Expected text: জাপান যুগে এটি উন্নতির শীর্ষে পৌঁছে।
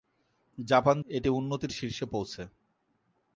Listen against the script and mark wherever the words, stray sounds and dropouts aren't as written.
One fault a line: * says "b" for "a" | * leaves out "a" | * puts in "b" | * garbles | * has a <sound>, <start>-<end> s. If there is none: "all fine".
* leaves out "যুগে"